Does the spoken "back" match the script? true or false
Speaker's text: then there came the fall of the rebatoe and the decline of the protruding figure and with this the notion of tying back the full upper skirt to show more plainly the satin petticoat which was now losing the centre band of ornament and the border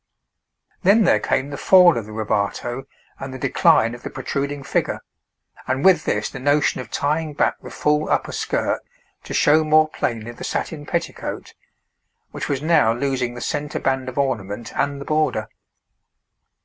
true